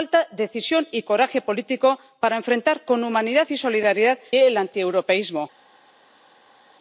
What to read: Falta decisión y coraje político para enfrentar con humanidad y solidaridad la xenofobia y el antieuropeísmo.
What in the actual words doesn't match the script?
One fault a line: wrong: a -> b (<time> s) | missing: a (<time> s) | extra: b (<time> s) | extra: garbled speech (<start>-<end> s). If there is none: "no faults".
missing: la xenofobia y (4.2 s)